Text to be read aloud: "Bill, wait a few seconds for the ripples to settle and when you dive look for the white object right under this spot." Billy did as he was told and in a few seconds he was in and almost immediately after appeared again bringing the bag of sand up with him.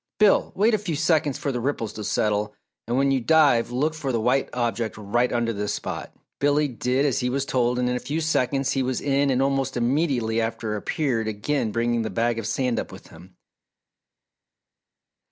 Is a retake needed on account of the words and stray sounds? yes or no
no